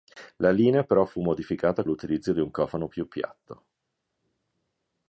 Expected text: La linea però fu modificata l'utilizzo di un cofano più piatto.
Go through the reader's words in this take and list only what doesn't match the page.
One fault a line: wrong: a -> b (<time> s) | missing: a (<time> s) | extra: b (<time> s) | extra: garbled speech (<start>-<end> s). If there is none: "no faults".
no faults